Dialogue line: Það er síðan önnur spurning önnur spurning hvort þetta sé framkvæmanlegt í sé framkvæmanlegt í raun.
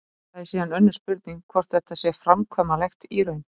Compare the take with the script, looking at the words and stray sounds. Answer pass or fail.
fail